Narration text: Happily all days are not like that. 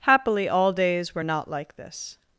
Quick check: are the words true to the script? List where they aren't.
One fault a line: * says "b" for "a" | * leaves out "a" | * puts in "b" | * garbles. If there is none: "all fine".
* says "were" for "are"
* says "this" for "that"